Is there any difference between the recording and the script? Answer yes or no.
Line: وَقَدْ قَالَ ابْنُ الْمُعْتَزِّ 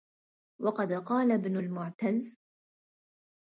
no